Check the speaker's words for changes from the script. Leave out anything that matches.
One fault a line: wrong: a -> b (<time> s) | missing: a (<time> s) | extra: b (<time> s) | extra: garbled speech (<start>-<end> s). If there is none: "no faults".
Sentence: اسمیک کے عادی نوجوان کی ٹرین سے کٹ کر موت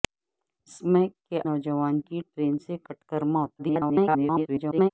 missing: عادی (1.4 s)
extra: garbled speech (3.6-4.9 s)